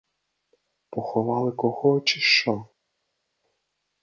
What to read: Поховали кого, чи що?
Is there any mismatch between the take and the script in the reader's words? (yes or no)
no